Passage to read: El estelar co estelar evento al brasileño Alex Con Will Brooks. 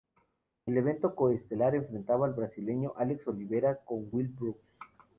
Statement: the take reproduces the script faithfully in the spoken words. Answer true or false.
false